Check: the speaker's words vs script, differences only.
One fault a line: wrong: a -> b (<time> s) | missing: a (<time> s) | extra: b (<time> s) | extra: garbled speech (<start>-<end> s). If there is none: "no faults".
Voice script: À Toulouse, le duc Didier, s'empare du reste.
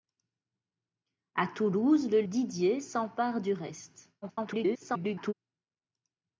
missing: duc (2.2 s)
extra: garbled speech (4.2-5.3 s)